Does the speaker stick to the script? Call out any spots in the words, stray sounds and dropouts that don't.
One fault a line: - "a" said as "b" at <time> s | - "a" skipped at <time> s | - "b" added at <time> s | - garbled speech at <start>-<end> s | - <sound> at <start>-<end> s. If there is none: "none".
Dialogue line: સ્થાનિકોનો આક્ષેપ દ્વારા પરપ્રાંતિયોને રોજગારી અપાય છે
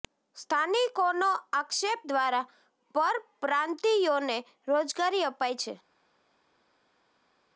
none